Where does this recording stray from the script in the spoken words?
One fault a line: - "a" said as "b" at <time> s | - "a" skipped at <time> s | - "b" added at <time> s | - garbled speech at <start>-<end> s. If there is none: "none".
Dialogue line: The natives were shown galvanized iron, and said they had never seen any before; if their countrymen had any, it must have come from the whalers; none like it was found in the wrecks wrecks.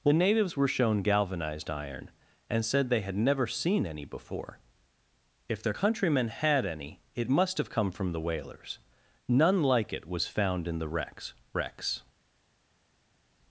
none